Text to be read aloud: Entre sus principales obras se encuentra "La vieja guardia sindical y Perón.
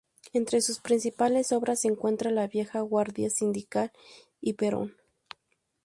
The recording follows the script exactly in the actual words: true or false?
true